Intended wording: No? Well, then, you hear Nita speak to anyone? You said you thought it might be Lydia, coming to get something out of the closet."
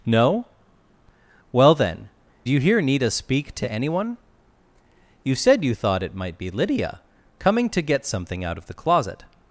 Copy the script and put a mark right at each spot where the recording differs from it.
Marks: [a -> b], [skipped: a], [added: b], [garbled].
No? Well, then, you hear Nita speak to anyone? You said you thought it might be Lydia, coming to get something out of the closet."